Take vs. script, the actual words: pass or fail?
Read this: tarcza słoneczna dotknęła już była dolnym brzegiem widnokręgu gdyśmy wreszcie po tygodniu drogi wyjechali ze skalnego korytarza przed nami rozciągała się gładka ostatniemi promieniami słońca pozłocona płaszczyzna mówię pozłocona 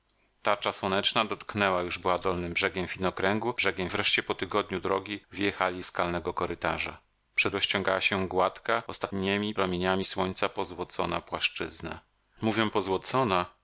fail